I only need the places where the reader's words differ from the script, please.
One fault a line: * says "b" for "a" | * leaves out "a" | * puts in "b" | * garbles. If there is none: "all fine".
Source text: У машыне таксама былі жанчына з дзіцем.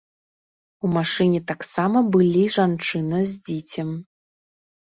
all fine